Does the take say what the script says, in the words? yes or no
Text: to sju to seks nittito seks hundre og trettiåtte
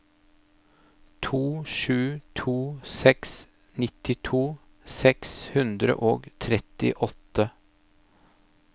yes